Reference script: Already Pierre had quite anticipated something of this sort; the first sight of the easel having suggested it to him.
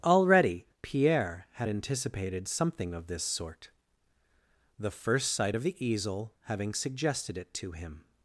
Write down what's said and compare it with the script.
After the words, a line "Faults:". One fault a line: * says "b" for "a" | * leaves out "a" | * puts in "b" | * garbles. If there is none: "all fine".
Already Pierre had anticipated something of this sort; the first sight of the easel having suggested it to him.
Faults:
* leaves out "quite"